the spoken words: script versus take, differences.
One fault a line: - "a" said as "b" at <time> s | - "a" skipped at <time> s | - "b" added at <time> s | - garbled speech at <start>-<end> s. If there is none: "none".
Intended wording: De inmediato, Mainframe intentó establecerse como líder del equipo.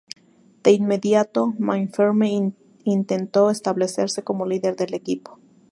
none